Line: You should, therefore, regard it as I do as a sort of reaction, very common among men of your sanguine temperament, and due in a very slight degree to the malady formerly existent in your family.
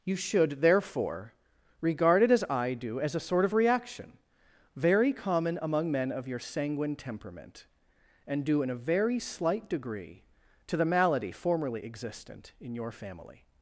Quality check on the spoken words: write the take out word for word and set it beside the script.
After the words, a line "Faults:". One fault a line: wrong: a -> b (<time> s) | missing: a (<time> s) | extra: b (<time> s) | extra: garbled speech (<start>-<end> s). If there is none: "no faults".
You should, therefore, regard it as I do as a sort of reaction, very common among men of your sanguine temperament, and due in a very slight degree to the malady formerly existent in your family.
Faults:
no faults